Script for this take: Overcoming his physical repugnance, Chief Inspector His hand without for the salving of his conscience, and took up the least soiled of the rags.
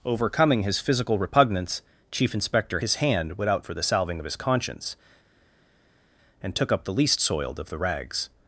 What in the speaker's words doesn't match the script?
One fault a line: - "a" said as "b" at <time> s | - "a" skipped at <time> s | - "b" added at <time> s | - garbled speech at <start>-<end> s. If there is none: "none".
none